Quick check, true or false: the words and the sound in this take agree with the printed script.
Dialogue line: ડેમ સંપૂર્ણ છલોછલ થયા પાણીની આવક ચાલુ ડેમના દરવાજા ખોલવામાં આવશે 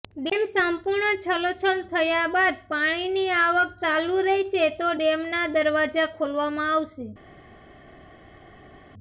false